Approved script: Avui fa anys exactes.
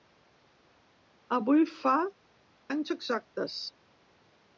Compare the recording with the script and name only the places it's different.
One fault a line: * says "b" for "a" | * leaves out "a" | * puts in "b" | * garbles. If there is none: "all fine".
all fine